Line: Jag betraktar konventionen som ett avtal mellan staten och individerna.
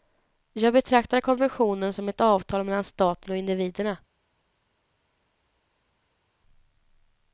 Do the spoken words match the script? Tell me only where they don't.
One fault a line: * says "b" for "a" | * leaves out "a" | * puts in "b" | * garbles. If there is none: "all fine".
all fine